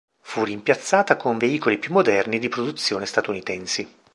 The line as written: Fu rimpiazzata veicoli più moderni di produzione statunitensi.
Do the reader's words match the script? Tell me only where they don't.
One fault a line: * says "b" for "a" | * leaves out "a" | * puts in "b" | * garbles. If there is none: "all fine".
* puts in "con"